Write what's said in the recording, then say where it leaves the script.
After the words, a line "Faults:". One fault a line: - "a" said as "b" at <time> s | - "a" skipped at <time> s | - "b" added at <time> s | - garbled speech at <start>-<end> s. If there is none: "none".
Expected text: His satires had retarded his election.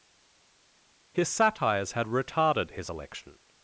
His satires had retarded his election.
Faults:
none